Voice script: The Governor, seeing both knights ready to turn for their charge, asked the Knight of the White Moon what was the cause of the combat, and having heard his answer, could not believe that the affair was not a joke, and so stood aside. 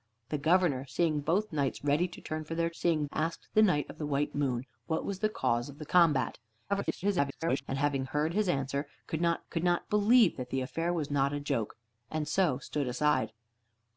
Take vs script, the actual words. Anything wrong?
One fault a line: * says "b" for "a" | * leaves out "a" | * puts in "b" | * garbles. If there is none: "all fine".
* says "seeing" for "charge"
* garbles
* puts in "could not"